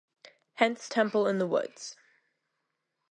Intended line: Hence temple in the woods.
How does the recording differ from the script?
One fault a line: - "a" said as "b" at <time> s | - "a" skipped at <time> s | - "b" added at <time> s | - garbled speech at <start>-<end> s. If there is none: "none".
none